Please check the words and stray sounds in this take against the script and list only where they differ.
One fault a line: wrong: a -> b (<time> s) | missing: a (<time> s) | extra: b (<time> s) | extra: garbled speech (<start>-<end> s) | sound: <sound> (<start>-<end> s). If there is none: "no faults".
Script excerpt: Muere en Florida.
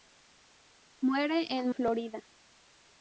no faults